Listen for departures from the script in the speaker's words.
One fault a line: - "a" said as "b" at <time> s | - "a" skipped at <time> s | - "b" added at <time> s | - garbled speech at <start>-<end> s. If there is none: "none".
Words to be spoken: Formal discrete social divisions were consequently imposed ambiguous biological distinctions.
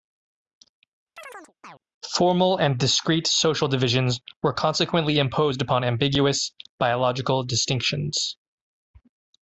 - "and" added at 2.6 s
- "upon" added at 5.6 s